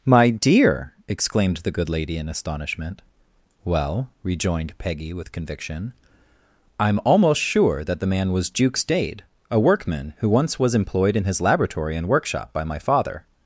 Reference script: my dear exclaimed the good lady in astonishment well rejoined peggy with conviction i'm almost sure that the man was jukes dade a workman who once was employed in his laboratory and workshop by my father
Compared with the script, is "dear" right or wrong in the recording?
right